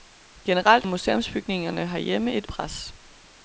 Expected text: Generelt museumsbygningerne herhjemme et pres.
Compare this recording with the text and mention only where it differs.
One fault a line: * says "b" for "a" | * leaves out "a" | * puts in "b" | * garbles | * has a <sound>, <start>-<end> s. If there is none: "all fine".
all fine